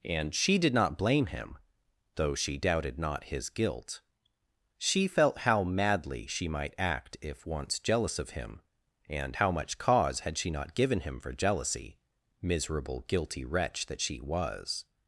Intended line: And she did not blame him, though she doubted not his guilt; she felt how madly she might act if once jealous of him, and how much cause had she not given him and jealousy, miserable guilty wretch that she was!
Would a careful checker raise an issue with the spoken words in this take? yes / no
yes